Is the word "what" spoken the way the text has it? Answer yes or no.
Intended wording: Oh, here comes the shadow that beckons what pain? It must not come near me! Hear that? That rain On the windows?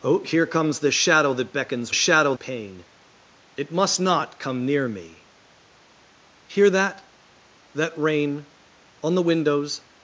no